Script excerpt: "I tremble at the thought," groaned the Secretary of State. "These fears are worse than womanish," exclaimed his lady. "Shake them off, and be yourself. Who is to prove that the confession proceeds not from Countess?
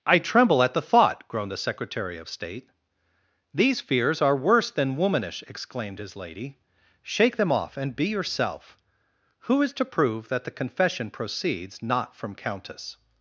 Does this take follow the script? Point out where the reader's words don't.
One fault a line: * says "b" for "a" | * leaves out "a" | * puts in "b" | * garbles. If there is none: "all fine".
all fine